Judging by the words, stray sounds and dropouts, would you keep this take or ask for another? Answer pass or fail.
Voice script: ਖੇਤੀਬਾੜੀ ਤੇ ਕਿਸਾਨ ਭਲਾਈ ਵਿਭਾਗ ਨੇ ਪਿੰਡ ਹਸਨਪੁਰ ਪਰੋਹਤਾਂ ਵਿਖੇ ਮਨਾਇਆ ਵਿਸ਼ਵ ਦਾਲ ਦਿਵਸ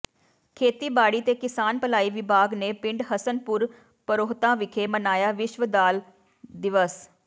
pass